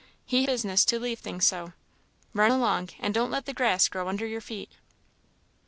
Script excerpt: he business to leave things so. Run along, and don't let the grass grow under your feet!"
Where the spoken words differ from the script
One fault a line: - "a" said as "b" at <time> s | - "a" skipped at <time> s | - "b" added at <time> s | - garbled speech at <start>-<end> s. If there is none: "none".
none